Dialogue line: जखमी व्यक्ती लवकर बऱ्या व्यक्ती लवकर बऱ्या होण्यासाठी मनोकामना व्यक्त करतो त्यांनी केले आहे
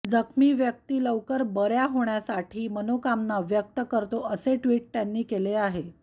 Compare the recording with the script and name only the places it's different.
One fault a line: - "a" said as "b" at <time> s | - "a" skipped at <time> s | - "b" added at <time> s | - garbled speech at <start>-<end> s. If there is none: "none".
- "व्यक्ती लवकर बऱ्या" skipped at 1.8 s
- "असे ट्विट" added at 4.3 s